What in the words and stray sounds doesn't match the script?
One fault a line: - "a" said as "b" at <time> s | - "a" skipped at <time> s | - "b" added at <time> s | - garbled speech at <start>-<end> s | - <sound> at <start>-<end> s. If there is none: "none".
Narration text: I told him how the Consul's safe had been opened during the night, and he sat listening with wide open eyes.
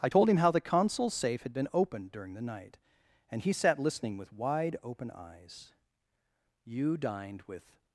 - "You dined with" added at 6.7 s